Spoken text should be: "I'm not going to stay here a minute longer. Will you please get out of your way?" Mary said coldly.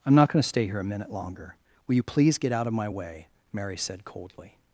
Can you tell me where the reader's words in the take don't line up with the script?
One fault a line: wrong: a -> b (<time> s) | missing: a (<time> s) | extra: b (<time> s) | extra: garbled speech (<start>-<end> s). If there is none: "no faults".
wrong: your -> my (2.7 s)